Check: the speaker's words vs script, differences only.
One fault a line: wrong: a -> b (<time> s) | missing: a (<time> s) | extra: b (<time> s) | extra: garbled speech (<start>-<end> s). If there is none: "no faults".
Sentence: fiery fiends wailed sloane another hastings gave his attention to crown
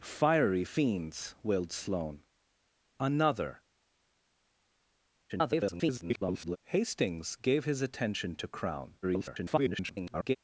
extra: garbled speech (5.3-6.6 s)
extra: garbled speech (9.0-10.4 s)